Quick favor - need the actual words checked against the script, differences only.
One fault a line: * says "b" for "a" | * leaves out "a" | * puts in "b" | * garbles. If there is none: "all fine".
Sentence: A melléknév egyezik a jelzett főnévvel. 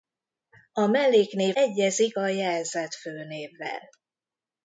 all fine